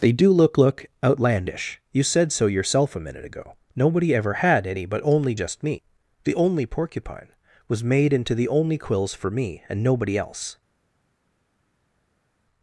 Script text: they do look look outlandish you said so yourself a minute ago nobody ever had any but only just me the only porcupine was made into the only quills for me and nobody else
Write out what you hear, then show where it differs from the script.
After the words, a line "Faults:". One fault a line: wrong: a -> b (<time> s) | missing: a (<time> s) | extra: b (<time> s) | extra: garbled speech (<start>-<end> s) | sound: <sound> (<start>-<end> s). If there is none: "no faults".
they do look look outlandish you said so yourself a minute ago nobody ever had any but only just me the only porcupine was made into the only quills for me and nobody else
Faults:
no faults